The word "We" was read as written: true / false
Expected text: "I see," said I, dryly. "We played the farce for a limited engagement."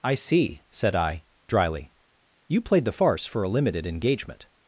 false